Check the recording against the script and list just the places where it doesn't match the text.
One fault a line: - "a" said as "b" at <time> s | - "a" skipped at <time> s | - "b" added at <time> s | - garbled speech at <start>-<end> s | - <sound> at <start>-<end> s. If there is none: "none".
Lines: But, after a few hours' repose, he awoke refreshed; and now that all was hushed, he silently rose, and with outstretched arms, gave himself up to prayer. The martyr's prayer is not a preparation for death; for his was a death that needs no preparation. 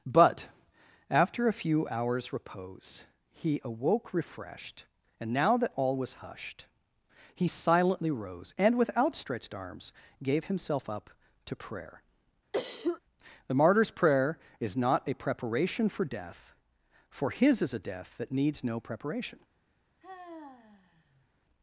- cough at 12.5-13.0 s
- "was" said as "is" at 17.6 s
- sigh at 20.0-21.3 s